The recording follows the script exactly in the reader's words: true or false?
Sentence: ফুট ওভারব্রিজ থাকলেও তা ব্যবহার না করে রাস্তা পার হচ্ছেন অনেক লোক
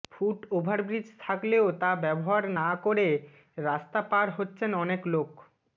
true